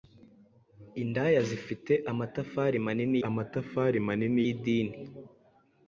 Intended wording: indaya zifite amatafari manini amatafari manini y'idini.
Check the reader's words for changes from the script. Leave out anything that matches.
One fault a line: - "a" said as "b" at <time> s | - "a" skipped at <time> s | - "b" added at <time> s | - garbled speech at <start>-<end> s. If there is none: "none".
none